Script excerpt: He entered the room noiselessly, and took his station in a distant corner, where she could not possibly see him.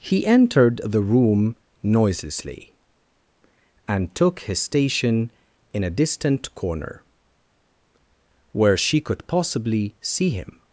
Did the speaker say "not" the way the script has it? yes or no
no